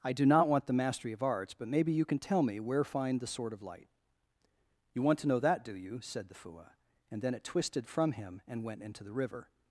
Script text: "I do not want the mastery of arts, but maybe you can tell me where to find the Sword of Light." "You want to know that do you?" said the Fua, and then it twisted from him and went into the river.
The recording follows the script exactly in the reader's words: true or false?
false